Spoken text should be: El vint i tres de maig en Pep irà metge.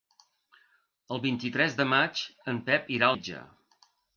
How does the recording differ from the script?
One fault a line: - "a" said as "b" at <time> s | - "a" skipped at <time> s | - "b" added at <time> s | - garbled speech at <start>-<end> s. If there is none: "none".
none